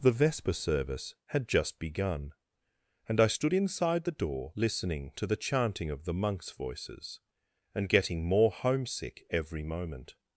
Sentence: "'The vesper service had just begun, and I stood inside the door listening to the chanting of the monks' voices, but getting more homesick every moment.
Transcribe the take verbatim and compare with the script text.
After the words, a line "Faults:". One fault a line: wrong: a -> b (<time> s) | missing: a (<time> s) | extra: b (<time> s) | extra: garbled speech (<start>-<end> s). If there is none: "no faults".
"'The vesper service had just begun, and I stood inside the door listening to the chanting of the monks' voices, and getting more homesick every moment.
Faults:
wrong: but -> and (7.7 s)